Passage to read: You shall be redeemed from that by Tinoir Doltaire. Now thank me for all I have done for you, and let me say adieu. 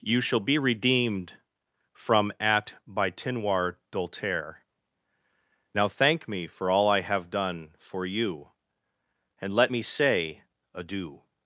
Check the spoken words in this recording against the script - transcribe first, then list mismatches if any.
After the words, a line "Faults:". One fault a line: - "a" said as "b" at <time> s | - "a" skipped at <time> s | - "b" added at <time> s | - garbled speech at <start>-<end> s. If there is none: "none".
You shall be redeemed from at by Tinoir Doltaire. Now thank me for all I have done for you, and let me say adieu.
Faults:
- "that" said as "at" at 2.4 s